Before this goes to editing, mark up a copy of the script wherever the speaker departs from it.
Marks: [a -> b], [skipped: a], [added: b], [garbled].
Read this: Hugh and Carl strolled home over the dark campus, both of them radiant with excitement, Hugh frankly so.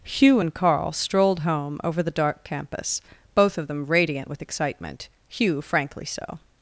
Hugh and Carl strolled home over the dark campus, both of them radiant with excitement, Hugh frankly so.